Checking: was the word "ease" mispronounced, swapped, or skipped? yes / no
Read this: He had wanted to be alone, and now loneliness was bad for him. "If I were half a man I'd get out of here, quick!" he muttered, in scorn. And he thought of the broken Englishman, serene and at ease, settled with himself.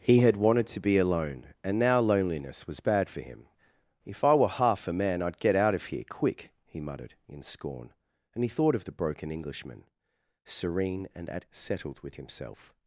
yes